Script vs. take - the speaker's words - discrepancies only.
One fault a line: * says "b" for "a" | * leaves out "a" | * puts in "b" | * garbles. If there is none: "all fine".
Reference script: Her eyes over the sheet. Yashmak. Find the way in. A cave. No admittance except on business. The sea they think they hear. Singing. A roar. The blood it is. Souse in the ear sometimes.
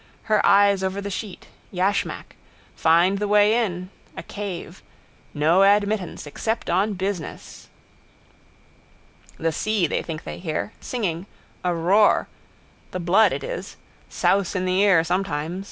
all fine